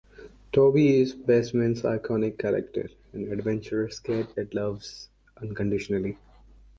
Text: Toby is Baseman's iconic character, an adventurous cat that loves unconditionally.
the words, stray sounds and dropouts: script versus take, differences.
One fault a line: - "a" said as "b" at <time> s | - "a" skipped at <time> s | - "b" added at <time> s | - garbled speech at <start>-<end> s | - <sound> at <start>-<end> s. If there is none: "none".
none